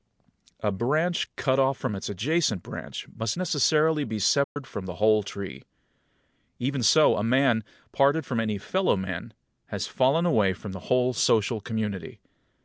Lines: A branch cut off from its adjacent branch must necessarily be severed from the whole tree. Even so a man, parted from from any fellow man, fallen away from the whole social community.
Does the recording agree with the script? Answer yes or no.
no